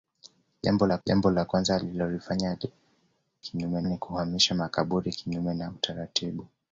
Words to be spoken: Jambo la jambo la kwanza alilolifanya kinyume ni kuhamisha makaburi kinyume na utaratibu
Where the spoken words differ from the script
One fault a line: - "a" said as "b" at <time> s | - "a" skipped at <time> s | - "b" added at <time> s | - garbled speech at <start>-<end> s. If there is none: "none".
none